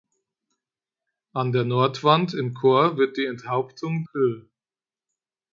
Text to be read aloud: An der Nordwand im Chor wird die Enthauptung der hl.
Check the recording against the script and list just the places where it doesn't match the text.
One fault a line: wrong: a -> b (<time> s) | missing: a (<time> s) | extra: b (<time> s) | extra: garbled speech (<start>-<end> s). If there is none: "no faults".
missing: der (4.0 s)